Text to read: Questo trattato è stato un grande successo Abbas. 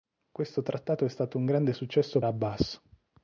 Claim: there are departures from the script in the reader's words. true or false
false